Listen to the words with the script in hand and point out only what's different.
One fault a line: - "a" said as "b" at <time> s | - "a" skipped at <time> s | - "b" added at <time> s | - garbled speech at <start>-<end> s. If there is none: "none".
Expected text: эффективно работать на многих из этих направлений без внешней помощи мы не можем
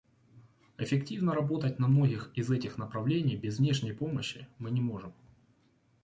none